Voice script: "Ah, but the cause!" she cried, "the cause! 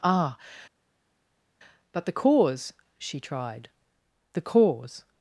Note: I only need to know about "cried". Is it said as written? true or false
false